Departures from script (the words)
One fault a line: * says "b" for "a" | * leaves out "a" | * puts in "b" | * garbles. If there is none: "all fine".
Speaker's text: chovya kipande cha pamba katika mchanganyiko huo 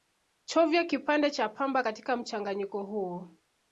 all fine